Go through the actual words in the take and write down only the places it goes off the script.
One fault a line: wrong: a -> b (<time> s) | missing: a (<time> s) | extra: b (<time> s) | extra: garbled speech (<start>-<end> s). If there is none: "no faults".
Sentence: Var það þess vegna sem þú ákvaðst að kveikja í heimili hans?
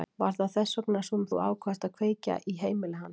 no faults